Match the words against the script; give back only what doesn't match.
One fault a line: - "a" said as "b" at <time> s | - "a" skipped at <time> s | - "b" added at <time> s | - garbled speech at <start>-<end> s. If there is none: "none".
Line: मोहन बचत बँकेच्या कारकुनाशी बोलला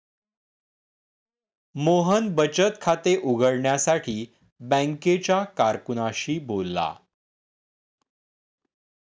- "खाते उघडण्यासाठी" added at 2.8 s